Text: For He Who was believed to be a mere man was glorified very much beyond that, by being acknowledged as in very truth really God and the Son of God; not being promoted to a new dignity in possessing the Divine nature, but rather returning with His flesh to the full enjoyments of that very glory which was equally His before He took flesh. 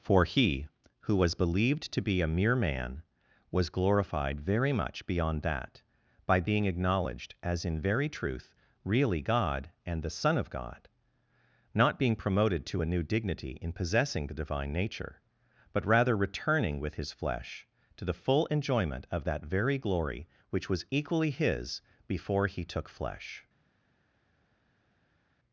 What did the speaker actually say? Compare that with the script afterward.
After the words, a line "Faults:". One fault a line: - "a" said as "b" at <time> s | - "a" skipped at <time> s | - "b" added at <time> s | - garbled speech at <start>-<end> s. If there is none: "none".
For He Who was believed to be a mere man was glorified very much beyond that, by being acknowledged as in very truth really God and the Son of God; not being promoted to a new dignity in possessing the Divine nature, but rather returning with His flesh to the full enjoyment of that very glory which was equally His before He took flesh.
Faults:
- "enjoyments" said as "enjoyment" at 18.5 s